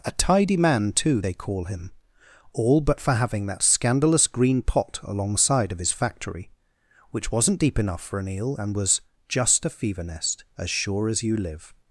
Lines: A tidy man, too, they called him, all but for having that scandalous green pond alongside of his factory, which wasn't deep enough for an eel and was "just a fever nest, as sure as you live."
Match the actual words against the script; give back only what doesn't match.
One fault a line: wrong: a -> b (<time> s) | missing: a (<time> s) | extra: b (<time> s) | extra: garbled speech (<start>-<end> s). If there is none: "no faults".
wrong: called -> call (1.3 s)
wrong: pond -> pot (4.6 s)